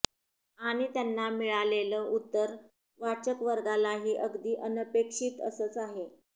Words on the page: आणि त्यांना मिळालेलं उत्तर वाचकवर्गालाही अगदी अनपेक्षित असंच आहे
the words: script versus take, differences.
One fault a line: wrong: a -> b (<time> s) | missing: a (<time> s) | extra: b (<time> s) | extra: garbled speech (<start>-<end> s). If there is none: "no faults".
no faults